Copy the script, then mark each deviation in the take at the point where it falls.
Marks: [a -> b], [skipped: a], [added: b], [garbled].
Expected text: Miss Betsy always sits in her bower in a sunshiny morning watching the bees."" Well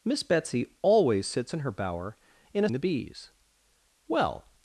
Miss Betsy always sits in her bower in a [skipped: sunshiny morning watching] the bees."" Well